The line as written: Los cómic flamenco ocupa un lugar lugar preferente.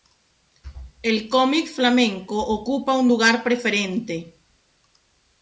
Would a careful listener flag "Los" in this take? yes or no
yes